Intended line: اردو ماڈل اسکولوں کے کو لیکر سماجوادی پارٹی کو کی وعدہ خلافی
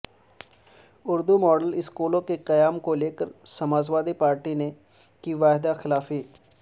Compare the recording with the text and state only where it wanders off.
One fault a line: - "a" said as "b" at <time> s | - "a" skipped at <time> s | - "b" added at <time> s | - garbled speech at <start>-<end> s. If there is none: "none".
- "قیام" added at 2.5 s
- "کو" said as "نے" at 4.5 s